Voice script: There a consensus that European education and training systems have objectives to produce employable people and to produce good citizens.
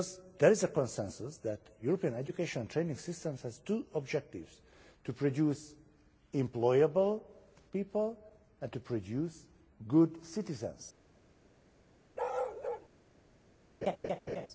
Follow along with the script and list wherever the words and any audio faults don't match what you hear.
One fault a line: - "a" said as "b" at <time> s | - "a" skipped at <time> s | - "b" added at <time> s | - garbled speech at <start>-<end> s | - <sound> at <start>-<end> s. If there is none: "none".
- "is" added at 0.5 s
- "two" added at 3.6 s
- bark at 12.2-12.9 s
- laugh at 13.8-14.5 s